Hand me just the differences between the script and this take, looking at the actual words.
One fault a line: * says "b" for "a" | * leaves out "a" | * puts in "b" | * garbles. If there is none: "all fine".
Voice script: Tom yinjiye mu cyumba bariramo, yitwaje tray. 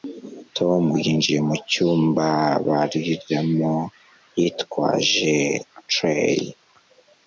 all fine